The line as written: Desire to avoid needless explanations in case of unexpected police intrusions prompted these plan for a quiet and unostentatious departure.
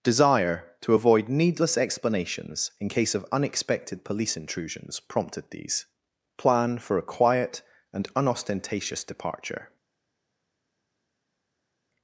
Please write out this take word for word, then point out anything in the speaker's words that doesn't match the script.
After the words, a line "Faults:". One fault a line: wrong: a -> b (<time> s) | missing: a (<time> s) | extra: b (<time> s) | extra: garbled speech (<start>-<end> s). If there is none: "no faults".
Desire to avoid needless explanations in case of unexpected police intrusions prompted these plan for a quiet and unostentatious departure.
Faults:
no faults